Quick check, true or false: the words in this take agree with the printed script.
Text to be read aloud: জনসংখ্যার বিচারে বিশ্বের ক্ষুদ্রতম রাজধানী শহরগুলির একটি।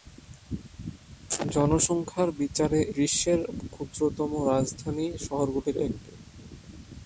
true